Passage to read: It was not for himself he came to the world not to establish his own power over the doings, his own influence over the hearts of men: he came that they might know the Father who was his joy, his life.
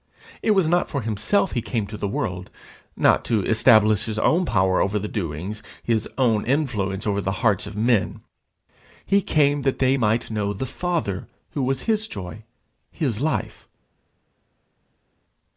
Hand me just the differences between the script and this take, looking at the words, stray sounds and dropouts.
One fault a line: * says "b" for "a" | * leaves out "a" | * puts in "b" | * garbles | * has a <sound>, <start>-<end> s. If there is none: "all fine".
all fine